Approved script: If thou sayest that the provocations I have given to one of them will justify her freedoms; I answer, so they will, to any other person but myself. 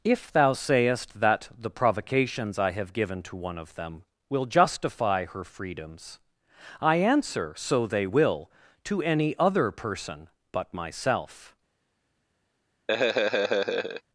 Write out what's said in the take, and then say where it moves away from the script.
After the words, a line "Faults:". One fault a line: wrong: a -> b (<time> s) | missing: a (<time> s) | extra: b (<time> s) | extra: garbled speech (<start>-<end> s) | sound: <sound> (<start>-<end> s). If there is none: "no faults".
If thou sayest that the provocations I have given to one of them will justify her freedoms; I answer, so they will, to any other person but myself.
Faults:
sound: laugh (12.9-14.0 s)